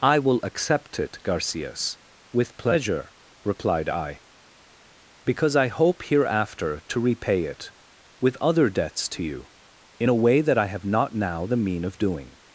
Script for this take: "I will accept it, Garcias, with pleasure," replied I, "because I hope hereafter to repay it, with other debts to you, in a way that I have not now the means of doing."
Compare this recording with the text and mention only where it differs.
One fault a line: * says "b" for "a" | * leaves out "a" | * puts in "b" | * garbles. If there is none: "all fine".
* says "mean" for "means"